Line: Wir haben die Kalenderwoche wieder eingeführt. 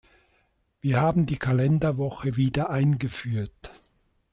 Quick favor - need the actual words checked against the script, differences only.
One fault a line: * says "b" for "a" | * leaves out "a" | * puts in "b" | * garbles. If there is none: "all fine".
all fine